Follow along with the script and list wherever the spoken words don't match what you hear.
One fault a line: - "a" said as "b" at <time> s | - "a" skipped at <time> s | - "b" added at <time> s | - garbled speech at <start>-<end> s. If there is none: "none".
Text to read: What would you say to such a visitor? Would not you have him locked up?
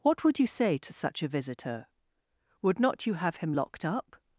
none